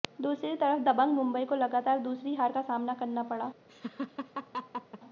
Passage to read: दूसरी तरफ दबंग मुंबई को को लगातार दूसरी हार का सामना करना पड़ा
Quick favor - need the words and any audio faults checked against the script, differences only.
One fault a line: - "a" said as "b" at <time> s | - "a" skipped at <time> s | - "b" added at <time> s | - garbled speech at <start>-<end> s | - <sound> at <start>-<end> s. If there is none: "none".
- "को" skipped at 1.6 s
- laugh at 3.7-5.0 s